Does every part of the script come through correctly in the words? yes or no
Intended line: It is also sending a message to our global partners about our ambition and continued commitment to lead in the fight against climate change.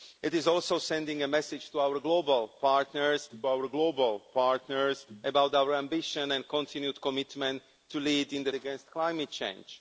no